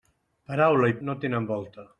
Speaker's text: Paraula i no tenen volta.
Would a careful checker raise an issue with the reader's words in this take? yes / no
no